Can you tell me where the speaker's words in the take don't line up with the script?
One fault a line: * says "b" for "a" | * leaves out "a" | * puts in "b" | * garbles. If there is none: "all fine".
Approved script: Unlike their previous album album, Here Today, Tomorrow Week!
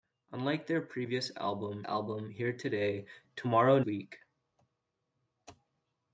all fine